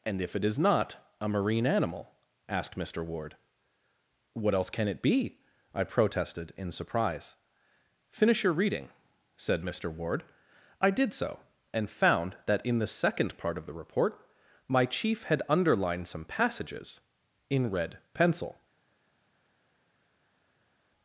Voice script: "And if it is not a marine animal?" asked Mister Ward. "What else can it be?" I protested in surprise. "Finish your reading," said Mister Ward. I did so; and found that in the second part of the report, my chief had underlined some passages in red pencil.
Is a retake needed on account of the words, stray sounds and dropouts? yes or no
no